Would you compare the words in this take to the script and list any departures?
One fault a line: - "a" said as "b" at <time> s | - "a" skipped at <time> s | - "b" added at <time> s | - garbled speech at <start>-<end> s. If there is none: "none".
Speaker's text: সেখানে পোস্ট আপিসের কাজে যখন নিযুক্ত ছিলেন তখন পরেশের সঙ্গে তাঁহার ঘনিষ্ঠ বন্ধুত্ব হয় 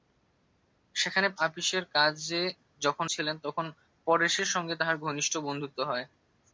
- "পোস্ট" skipped at 1.3 s
- "নিযুক্ত" skipped at 3.1 s